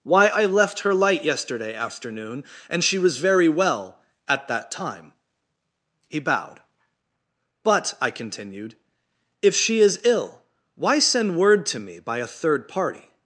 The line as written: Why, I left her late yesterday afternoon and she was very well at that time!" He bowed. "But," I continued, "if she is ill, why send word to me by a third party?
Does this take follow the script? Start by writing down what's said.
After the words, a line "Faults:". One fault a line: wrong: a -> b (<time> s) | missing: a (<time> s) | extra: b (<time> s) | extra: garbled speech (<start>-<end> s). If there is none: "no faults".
Why, I left her light yesterday afternoon and she was very well at that time!" He bowed. "But," I continued, "if she is ill, why send word to me by a third party?
Faults:
wrong: late -> light (0.9 s)